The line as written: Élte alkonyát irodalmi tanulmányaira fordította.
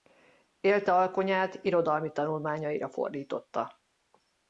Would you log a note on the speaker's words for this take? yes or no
no